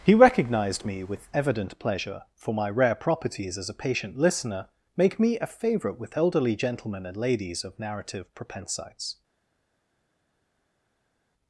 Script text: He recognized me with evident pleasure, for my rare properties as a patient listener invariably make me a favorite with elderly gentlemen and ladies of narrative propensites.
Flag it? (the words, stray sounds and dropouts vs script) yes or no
yes